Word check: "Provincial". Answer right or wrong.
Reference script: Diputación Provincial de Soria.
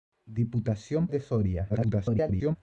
wrong